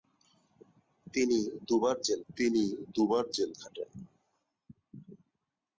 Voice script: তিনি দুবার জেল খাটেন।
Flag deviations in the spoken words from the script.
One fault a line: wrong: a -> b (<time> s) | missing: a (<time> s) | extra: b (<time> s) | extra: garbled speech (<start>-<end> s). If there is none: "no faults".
extra: তিনি দুবার জেল (2.3 s)